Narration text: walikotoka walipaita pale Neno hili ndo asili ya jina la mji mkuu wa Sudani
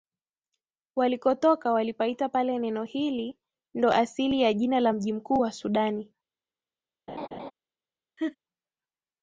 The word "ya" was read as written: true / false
true